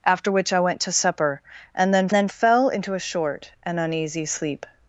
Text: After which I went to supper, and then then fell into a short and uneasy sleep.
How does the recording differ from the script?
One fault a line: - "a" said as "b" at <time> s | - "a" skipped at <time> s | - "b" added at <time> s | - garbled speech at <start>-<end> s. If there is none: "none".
none